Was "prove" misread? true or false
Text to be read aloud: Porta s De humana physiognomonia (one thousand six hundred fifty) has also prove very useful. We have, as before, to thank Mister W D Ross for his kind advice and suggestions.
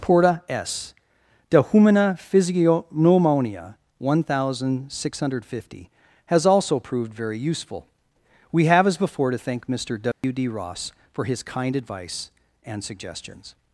true